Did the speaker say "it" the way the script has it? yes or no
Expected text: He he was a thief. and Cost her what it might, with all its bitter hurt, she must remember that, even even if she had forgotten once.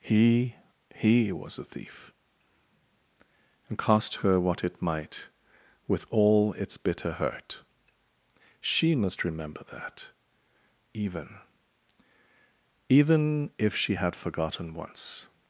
yes